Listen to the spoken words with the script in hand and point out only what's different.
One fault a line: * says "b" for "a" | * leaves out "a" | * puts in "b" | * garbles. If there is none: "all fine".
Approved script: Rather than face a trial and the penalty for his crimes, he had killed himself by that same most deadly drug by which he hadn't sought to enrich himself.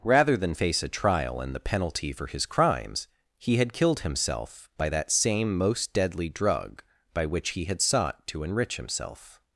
* says "had" for "hadn't"